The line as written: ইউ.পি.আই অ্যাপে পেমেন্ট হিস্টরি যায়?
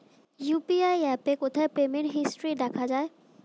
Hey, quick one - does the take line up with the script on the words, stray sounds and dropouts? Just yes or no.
no